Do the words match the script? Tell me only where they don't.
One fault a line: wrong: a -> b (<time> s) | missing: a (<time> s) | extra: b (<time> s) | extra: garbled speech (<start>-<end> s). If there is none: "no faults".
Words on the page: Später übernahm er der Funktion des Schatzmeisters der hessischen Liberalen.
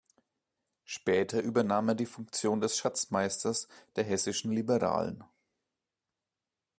wrong: der -> die (1.9 s)